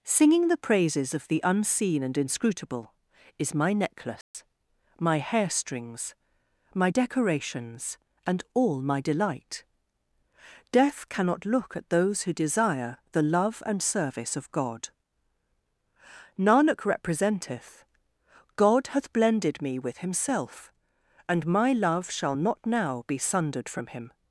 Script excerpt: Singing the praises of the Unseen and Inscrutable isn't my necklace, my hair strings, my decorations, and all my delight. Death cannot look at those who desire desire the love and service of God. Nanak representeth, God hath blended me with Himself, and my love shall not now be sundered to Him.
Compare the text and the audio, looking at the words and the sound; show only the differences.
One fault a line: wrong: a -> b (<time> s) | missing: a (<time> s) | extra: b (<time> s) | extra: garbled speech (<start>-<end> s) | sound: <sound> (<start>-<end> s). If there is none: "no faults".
wrong: isn't -> is (3.4 s)
sound: dropout (4.2-4.3 s)
missing: desire (13.0 s)
wrong: to -> from (23.7 s)